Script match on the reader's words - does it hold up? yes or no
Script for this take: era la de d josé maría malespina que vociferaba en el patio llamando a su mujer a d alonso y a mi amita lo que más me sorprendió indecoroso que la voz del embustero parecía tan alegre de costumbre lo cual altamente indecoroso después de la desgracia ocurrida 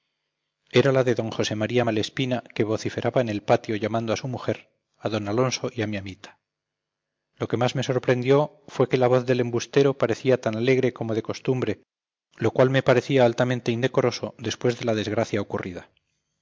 no